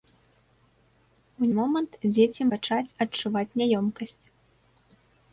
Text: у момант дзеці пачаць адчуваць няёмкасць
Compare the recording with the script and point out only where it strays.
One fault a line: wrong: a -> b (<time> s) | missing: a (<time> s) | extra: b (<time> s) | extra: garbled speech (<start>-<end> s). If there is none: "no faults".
no faults